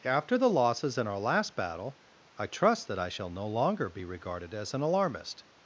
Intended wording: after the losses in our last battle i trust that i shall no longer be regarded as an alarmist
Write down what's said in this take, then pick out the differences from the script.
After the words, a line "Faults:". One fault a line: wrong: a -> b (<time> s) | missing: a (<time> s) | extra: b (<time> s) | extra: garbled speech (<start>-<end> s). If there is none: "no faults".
after the losses in our last battle i trust that i shall no longer be regarded as an alarmist
Faults:
no faults